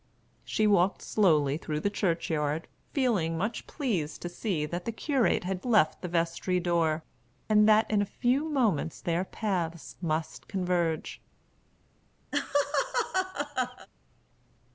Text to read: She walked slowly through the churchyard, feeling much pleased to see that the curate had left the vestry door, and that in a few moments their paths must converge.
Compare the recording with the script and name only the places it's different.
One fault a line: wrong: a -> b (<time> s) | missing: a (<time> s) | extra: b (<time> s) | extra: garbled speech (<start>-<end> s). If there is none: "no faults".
no faults